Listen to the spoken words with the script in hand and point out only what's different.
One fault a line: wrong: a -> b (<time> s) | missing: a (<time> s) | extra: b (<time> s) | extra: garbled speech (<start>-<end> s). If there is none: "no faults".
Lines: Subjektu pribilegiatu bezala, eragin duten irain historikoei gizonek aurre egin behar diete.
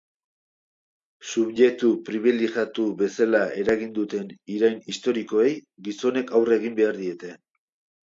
no faults